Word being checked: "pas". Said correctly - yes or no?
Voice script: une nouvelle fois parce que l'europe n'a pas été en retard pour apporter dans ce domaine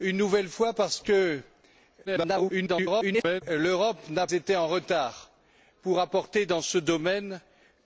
no